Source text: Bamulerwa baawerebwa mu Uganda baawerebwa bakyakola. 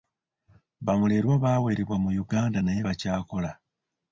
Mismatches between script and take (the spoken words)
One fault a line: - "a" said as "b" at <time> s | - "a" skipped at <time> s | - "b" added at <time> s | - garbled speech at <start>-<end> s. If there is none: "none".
- "baawerebwa" said as "naye" at 2.6 s